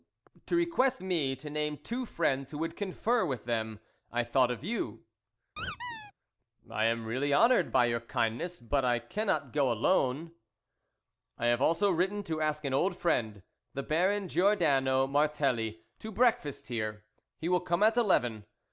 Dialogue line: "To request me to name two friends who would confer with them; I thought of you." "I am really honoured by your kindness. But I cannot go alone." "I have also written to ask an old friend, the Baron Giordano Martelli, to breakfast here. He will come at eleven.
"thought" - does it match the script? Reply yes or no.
yes